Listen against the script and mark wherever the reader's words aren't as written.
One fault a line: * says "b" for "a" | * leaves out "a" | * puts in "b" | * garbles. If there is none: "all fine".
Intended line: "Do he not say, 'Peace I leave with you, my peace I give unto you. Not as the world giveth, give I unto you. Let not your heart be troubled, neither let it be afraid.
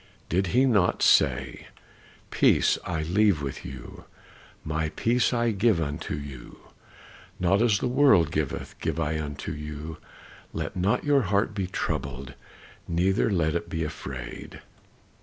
* says "Did" for "Do"